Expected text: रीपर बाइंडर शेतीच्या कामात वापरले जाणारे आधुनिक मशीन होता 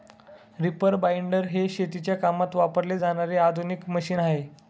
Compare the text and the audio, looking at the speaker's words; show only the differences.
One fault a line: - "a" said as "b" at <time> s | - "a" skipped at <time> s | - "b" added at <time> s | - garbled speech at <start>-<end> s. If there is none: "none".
- "हे" added at 1.5 s
- "होता" said as "आहे" at 4.2 s